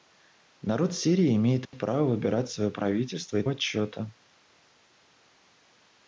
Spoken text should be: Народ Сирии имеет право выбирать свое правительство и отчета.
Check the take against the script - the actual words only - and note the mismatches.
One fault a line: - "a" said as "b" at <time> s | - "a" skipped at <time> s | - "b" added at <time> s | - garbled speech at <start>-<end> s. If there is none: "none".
none